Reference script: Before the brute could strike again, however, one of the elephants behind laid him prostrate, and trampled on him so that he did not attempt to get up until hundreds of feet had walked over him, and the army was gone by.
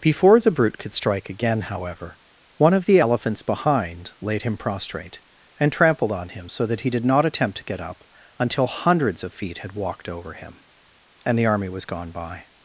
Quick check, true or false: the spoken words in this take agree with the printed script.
true